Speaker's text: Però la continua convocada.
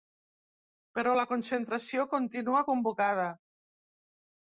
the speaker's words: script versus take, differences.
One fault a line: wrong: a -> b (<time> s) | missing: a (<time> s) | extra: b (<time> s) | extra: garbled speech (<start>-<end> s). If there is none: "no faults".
extra: concentració (1.3 s)